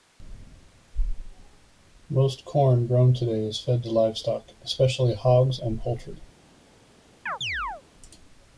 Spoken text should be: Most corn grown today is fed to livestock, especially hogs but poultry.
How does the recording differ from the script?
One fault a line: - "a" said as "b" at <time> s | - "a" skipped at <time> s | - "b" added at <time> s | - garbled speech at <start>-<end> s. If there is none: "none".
- "but" said as "and" at 5.6 s